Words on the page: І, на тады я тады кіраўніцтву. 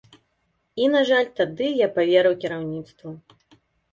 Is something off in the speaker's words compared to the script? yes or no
yes